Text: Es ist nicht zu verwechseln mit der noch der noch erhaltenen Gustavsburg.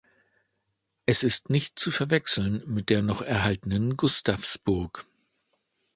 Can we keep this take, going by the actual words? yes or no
no